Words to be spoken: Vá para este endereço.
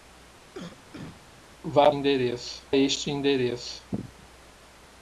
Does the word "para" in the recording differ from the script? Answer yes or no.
yes